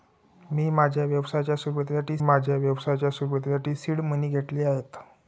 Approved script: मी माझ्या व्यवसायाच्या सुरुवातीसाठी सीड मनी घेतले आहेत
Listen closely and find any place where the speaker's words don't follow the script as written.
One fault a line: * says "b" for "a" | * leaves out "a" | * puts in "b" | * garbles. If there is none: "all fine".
* puts in "माझ्या व्यवसायाच्या सुरुवातीसाठी"